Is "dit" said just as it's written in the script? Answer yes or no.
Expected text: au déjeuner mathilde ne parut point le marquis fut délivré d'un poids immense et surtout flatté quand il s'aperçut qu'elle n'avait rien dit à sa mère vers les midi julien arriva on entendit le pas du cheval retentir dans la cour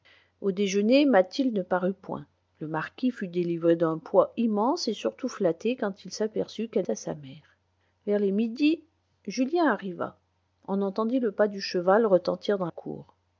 no